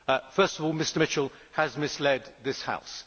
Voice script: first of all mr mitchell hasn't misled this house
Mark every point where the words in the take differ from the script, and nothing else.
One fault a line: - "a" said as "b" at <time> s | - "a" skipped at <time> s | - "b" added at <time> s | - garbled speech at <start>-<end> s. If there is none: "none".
- "hasn't" said as "has" at 1.5 s